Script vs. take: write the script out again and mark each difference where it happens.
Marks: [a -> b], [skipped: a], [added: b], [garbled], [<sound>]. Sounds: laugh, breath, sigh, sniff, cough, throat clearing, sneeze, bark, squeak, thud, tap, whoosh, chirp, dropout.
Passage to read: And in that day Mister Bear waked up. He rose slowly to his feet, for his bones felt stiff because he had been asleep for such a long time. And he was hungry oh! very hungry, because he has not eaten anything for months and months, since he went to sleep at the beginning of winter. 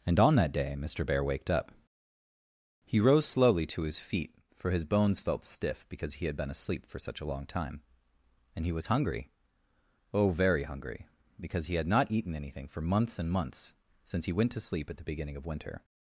And [in -> on] that day Mister Bear waked up. He rose slowly to his feet, for his bones felt stiff because he had been asleep for such a long time. And he was hungry oh! very hungry, because he [has -> had] not eaten anything for months and months, since he went to sleep at the beginning of winter.